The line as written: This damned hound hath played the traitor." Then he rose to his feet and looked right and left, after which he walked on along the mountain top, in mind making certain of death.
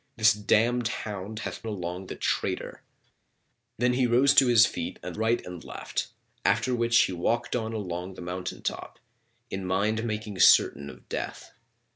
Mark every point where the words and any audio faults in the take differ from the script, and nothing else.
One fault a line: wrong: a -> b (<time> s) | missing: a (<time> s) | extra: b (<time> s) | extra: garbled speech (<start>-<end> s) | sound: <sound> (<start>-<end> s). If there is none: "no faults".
wrong: played -> along (1.7 s)
missing: looked (5.2 s)